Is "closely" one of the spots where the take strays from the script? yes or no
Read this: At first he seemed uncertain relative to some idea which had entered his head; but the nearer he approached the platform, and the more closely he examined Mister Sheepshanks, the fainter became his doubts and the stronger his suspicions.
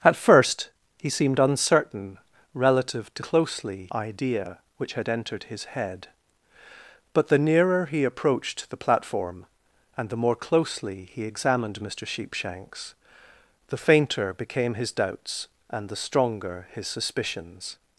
no